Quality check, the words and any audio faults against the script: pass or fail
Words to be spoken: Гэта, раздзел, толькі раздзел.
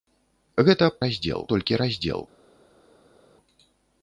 pass